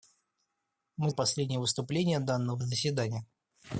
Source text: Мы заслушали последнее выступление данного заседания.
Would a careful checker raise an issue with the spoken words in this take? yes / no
yes